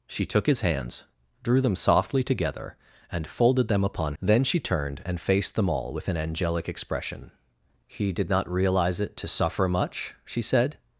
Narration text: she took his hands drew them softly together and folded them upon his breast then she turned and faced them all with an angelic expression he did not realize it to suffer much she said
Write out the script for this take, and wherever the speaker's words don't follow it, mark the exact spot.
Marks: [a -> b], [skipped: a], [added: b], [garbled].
she took his hands drew them softly together and folded them upon [skipped: his breast] then she turned and faced them all with an angelic expression he did not realize it to suffer much she said